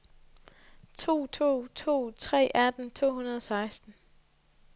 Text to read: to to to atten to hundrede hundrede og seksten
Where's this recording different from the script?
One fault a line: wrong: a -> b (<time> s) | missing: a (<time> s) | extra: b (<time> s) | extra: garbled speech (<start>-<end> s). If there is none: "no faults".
extra: tre (2.2 s)
missing: hundrede (3.4 s)